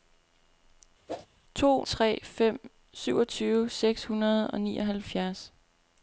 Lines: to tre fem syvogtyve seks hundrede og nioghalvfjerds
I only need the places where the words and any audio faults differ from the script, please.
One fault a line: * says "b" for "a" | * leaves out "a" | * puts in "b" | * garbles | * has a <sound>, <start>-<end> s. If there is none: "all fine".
* has a whoosh, 1.1-1.3 s